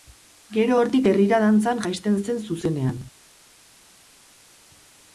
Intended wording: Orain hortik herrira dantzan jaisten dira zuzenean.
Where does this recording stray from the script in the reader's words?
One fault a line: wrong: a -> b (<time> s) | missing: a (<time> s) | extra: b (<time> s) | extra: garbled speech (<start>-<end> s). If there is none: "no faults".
wrong: Orain -> Gero (0.6 s)
wrong: dira -> zen (2.3 s)